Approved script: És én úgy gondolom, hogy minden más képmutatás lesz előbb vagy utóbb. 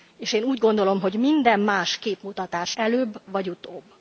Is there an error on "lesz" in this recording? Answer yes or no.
yes